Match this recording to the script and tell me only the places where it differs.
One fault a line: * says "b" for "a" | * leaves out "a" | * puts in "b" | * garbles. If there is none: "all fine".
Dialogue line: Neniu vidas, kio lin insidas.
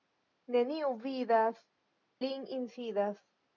* leaves out "kio"